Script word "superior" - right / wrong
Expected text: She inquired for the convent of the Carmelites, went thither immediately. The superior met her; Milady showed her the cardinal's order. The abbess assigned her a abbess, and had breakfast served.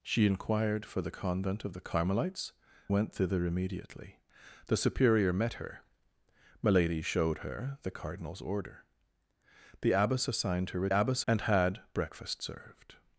right